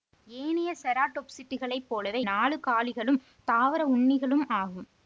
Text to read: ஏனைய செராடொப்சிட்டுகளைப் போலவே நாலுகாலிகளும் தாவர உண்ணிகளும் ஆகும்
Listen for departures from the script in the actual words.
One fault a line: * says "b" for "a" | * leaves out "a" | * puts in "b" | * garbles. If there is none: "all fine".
all fine